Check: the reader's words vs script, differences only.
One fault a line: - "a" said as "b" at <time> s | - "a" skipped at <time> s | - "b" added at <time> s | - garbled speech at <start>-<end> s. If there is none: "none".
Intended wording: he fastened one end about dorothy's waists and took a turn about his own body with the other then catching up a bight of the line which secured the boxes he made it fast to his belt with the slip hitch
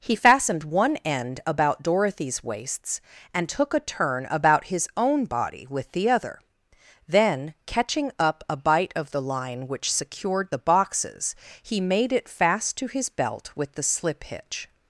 none